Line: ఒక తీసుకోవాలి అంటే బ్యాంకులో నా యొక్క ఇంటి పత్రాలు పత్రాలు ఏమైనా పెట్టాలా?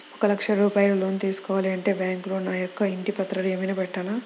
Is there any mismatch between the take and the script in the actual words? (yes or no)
yes